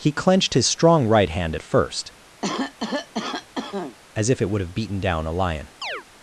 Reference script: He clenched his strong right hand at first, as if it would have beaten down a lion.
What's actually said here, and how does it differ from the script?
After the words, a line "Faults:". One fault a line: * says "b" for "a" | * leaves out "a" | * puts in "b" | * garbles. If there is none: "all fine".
He clenched his strong right hand at first, as if it would have beaten down a lion.
Faults:
all fine